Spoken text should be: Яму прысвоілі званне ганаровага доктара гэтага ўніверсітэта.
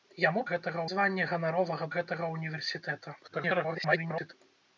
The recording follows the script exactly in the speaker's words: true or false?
false